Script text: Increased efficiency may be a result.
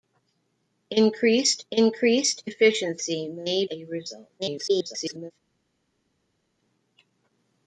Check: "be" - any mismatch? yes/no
yes